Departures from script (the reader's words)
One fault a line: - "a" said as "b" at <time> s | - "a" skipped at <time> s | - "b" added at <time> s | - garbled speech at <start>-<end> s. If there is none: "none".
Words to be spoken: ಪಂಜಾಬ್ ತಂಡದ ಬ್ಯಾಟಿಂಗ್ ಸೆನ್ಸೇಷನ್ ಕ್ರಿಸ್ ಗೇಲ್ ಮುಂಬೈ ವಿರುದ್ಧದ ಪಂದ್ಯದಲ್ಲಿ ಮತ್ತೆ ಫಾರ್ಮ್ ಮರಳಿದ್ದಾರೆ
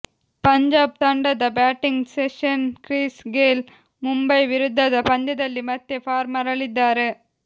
none